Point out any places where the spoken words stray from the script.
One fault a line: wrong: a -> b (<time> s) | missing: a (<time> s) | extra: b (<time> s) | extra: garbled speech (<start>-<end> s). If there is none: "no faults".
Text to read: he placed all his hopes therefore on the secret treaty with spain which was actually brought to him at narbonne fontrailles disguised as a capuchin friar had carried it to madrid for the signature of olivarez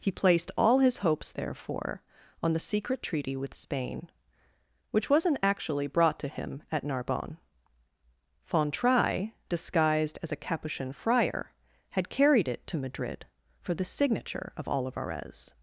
wrong: was -> wasn't (5.1 s)